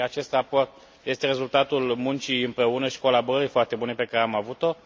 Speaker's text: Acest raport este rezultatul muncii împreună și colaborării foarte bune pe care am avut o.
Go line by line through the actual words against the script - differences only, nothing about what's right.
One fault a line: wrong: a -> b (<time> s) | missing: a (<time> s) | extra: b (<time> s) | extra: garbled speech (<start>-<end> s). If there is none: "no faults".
no faults